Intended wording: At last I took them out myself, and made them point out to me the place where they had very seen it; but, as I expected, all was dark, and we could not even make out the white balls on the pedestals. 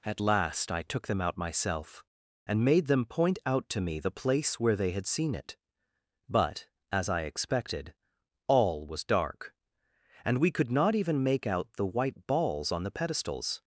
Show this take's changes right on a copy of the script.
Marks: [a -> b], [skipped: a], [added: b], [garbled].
At last I took them out myself, and made them point out to me the place where they had [skipped: very] seen it; but, as I expected, all was dark, and we could not even make out the white balls on the pedestals.